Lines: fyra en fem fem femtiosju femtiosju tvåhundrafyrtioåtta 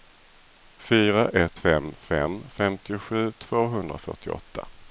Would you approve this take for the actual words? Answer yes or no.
no